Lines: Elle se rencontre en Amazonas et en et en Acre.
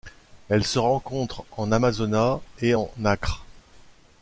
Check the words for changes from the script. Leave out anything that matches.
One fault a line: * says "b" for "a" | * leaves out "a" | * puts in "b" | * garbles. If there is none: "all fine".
* leaves out "et en"